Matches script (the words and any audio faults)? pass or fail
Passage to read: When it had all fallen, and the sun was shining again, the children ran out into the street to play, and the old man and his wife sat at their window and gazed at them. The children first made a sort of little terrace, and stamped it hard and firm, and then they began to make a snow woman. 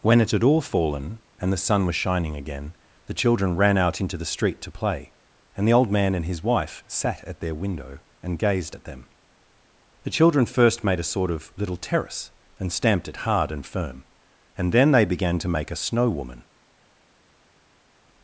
pass